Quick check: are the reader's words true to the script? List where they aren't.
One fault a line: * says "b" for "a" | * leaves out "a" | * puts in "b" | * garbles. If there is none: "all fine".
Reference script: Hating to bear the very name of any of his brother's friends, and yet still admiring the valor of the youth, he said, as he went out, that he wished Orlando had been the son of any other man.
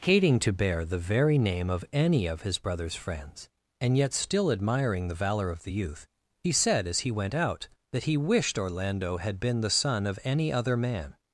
all fine